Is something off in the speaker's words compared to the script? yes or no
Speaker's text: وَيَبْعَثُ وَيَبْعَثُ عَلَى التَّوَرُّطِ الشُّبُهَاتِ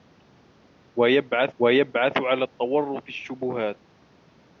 no